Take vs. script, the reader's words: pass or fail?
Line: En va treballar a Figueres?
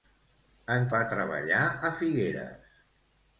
pass